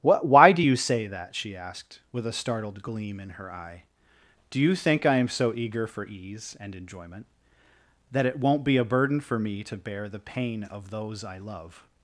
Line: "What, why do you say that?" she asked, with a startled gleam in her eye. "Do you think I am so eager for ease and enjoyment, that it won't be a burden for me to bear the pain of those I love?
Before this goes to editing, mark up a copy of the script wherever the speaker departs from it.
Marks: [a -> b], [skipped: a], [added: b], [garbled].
"What, why do you say that?" she asked, with a startled gleam in her eye. "Do you think I am so eager for ease and enjoyment, that it won't be a burden for me to bear the pain of those I love?